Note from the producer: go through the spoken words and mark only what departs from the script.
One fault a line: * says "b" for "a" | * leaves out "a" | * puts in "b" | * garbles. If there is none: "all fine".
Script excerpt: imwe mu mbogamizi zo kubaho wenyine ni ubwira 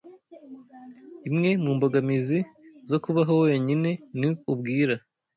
all fine